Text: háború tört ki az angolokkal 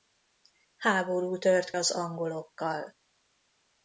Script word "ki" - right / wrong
wrong